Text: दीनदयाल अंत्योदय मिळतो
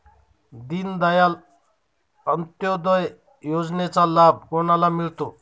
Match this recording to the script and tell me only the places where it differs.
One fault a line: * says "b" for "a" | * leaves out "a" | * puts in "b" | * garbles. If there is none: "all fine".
* puts in "योजनेचा लाभ कोणाला"